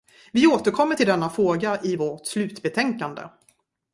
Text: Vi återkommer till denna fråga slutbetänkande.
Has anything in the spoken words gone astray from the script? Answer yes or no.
yes